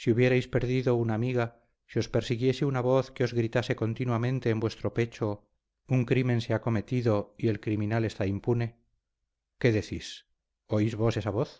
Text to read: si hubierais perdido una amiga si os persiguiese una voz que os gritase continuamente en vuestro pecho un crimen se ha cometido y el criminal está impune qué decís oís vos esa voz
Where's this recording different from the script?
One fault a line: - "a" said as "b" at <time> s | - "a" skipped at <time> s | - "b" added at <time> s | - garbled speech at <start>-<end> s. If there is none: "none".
none